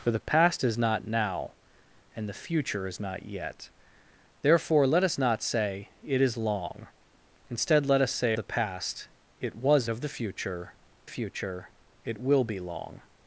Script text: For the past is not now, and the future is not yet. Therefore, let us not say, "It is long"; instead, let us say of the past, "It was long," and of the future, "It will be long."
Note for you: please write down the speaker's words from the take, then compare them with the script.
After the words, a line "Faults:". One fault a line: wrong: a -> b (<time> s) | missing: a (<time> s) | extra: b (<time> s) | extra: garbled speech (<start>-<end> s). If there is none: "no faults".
For the past is not now, and the future is not yet. Therefore, let us not say, "It is long"; instead, let us say the past, "It was of the future future, "It will be long."
Faults:
missing: of (8.3 s)
missing: long and (9.9 s)
extra: future (11.1 s)